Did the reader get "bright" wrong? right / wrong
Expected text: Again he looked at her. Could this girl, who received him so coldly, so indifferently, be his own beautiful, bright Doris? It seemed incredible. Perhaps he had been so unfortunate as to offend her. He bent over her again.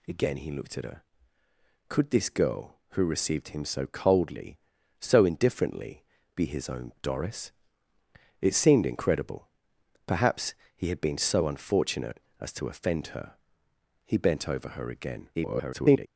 wrong